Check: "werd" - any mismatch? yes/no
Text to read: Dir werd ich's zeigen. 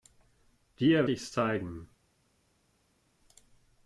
yes